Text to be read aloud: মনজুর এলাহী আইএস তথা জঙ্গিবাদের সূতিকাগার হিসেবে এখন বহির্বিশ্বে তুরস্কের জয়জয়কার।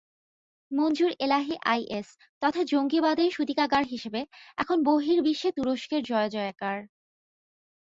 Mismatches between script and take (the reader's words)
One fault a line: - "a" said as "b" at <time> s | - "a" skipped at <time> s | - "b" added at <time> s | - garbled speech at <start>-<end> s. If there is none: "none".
none